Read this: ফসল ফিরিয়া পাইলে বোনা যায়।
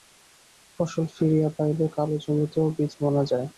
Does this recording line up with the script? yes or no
no